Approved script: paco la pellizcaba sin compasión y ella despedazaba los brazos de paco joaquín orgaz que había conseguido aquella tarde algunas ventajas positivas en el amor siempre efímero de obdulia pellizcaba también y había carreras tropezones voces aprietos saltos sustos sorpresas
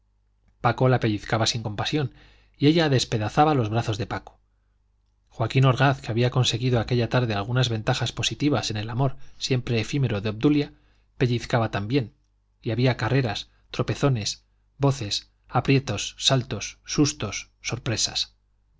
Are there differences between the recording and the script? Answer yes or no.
no